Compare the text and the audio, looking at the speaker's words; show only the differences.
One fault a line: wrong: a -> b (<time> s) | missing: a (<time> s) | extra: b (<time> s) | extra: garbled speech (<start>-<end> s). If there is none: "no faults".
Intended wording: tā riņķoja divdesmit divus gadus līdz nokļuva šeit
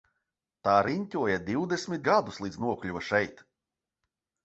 missing: divus (2.1 s)